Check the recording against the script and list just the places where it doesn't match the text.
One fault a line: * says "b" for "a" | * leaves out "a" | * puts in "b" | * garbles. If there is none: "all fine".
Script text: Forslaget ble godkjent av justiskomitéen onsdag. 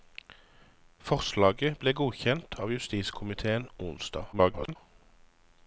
* garbles